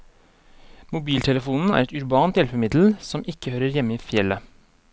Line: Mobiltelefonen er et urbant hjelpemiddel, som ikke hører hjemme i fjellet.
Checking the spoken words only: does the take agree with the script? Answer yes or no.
yes